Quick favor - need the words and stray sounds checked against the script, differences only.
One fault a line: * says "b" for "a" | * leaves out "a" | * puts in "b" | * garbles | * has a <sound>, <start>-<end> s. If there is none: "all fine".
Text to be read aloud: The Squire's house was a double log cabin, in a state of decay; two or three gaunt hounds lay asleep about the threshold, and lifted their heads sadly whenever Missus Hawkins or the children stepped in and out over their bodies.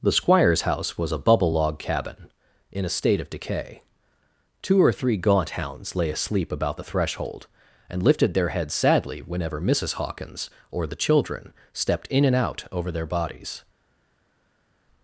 * says "bubble" for "double"